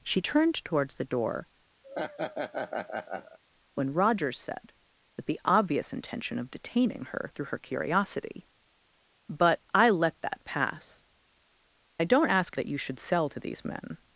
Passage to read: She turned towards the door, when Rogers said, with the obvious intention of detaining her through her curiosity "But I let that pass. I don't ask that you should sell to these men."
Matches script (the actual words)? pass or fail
pass